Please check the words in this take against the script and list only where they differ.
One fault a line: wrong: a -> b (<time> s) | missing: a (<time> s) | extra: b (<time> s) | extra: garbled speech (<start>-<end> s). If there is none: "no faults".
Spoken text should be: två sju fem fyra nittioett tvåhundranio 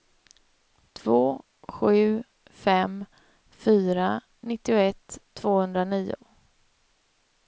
no faults